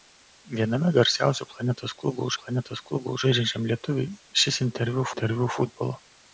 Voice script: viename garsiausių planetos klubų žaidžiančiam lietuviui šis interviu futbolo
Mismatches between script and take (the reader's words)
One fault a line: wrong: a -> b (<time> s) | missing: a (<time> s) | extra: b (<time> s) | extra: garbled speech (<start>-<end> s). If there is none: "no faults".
extra: planetos klubų (2.4 s)
extra: interviu (5.1 s)